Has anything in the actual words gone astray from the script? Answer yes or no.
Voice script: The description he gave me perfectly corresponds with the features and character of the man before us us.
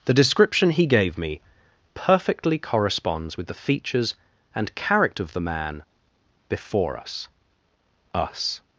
no